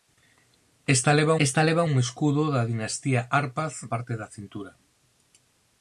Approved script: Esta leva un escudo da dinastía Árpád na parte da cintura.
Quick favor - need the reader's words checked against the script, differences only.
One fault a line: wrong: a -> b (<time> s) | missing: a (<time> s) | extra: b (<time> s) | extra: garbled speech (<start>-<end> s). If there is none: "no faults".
extra: esta leva (1.5 s)
missing: na (3.7 s)